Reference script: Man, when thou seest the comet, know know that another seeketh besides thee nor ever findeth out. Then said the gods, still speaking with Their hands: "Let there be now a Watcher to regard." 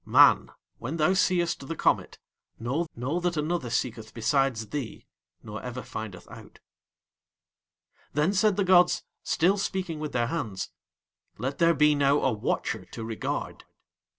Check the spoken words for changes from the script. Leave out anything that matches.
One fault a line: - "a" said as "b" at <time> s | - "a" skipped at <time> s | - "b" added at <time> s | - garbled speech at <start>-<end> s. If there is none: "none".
none